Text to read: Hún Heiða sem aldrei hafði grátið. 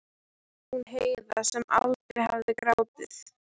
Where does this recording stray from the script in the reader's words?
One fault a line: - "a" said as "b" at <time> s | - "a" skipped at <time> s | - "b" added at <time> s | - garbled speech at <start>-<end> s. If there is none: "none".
none